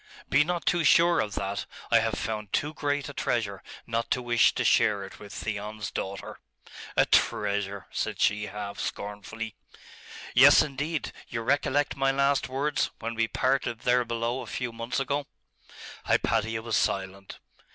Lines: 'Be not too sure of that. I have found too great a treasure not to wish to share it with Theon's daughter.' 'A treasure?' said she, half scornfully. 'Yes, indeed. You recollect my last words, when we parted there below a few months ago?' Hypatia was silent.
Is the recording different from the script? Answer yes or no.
no